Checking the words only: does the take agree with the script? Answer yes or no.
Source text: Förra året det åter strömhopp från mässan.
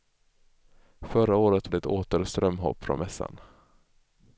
yes